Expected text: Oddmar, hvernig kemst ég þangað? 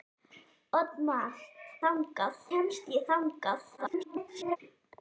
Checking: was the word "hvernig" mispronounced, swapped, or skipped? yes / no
yes